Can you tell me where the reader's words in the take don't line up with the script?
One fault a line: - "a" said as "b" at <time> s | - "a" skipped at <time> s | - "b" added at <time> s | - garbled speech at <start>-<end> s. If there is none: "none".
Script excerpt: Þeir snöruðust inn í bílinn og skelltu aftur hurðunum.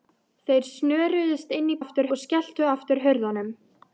- "bílinn" said as "aftur" at 1.8 s